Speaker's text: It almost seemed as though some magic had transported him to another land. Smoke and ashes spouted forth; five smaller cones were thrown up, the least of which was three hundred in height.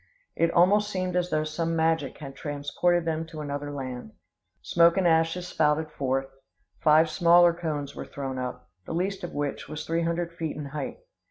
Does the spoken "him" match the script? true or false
false